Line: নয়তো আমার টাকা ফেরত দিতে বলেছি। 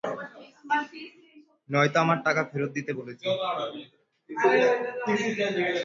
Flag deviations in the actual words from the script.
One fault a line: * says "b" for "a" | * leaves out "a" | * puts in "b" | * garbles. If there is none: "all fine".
all fine